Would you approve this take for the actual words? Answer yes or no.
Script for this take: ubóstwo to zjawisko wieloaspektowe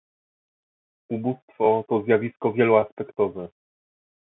yes